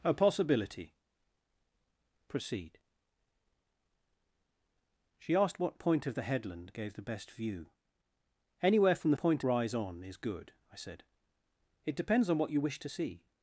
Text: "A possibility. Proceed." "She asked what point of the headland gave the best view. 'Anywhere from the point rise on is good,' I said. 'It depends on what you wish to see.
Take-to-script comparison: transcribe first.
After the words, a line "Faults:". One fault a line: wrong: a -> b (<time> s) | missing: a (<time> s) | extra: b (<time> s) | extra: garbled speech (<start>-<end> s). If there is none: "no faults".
"A possibility. Proceed." "She asked what point of the headland gave the best view. 'Anywhere from the point rise on is good,' I said. 'It depends on what you wish to see.
Faults:
no faults